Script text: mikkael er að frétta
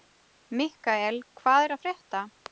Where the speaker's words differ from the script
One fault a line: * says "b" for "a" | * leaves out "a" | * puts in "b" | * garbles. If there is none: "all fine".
* puts in "hvað"